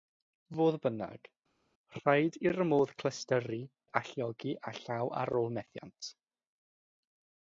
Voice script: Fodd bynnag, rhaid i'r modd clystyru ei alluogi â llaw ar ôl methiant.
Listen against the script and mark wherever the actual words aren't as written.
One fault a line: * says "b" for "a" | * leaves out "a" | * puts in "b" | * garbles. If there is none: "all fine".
all fine